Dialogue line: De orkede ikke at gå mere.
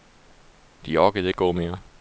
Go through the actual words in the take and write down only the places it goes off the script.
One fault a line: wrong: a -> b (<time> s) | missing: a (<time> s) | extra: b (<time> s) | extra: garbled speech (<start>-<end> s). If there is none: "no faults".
missing: ikke (1.3 s)